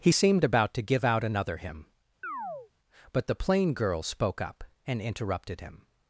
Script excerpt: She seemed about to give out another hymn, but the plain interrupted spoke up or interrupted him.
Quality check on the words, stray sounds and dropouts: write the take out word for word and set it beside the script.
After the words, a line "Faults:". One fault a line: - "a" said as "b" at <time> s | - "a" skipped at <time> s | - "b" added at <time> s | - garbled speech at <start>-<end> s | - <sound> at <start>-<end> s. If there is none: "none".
He seemed about to give out another hymn, but the plain girl spoke up and interrupted him.
Faults:
- "She" said as "He" at 0.0 s
- chirp at 2.2-2.7 s
- "interrupted" said as "girl" at 3.7 s
- "or" said as "and" at 4.8 s